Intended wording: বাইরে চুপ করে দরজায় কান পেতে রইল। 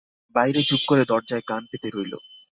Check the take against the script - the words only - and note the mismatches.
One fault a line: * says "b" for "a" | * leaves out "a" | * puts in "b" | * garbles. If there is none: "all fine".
all fine